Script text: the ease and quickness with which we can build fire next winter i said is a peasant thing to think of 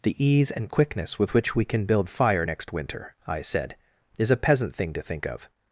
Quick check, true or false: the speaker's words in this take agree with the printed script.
true